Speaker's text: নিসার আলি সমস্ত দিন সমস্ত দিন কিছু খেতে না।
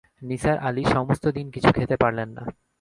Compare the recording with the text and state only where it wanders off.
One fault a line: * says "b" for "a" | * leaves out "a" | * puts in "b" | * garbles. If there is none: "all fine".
* leaves out "সমস্ত দিন"
* puts in "পারলেন"